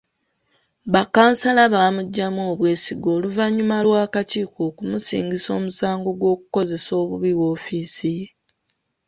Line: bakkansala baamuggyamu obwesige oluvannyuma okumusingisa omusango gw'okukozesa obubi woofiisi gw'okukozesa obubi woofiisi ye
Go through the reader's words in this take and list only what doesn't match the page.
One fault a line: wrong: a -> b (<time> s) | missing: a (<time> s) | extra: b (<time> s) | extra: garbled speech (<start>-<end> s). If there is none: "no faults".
extra: lw'akakiiko (3.8 s)
missing: gw'okukozesa obubi woofiisi (8.1 s)